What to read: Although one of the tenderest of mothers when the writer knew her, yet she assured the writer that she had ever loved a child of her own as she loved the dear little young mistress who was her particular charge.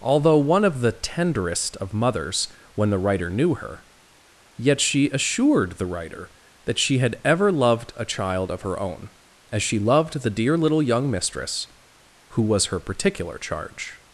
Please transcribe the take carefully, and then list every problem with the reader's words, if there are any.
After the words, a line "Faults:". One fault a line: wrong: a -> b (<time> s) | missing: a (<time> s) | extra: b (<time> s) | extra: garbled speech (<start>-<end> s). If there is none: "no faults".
Although one of the tenderest of mothers when the writer knew her, yet she assured the writer that she had ever loved a child of her own as she loved the dear little young mistress who was her particular charge.
Faults:
no faults